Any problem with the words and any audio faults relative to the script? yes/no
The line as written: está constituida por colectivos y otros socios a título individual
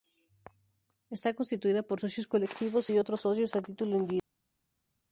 yes